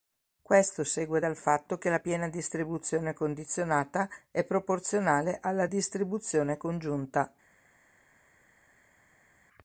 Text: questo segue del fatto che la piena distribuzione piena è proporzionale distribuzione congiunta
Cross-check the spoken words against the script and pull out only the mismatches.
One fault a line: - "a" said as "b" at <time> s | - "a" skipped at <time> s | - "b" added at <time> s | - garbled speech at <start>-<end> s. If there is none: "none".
- "del" said as "dal" at 1.2 s
- "piena" said as "condizionata" at 3.1 s
- "alla" added at 5.4 s